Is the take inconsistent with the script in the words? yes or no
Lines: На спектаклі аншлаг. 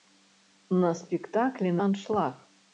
no